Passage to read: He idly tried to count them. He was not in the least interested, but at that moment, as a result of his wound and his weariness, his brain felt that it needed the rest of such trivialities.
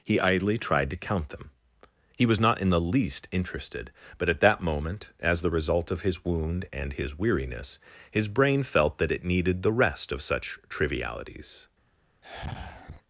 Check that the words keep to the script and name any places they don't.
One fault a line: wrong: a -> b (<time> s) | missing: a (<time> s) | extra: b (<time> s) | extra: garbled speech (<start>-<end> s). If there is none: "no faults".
wrong: a -> the (5.4 s)